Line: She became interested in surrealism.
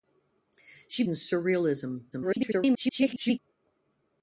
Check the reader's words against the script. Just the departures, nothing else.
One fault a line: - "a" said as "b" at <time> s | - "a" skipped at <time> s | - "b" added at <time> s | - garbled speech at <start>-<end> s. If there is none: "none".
- "became interested" skipped at 1.0 s
- garbled speech at 2.1-3.4 s